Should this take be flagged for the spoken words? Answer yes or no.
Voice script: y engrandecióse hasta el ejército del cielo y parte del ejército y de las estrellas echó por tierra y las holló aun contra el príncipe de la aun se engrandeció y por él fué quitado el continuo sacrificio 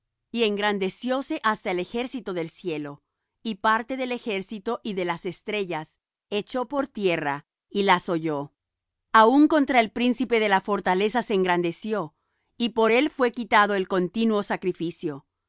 yes